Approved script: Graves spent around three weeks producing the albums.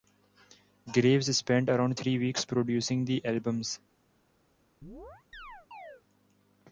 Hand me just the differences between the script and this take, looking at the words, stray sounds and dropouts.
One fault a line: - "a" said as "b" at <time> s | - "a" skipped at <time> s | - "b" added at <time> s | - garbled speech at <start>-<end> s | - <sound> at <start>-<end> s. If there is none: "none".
- chirp at 4.8-6.0 s